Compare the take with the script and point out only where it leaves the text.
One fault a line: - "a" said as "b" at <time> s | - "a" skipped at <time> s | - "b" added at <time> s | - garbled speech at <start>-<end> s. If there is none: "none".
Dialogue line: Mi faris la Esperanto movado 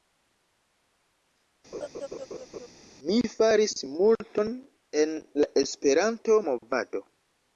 - "multon en" added at 4.0 s